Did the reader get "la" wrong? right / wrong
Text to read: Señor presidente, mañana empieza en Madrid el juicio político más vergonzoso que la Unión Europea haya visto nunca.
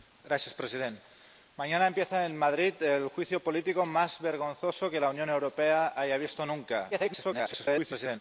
right